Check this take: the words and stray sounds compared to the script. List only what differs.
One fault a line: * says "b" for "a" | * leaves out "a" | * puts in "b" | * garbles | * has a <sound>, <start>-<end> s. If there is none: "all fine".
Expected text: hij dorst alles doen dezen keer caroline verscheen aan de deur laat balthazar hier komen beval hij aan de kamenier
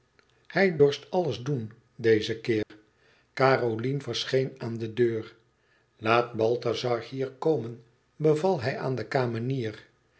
* has a dropout, 2.6-2.7 s